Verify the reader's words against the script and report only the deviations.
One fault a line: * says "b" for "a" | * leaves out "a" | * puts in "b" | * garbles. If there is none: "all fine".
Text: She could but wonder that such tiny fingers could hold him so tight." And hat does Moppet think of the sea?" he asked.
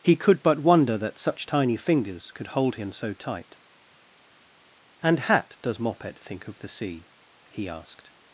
* says "He" for "She"